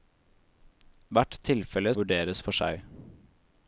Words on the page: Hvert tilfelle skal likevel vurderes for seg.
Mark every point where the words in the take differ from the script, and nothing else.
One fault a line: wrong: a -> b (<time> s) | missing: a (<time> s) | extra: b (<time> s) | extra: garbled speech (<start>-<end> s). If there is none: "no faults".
missing: skal likevel (1.9 s)